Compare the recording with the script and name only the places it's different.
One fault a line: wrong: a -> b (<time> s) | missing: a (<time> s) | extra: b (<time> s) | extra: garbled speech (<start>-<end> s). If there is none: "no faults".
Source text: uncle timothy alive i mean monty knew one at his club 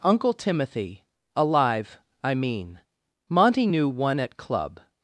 missing: his (4.4 s)